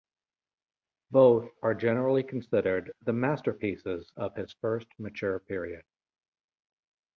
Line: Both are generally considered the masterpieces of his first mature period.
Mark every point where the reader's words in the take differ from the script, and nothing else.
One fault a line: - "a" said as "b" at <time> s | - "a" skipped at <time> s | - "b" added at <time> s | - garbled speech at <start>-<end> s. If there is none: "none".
none